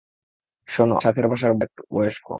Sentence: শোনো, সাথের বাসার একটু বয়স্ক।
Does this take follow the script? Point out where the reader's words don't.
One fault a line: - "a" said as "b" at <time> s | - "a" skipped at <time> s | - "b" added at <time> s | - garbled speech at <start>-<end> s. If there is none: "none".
none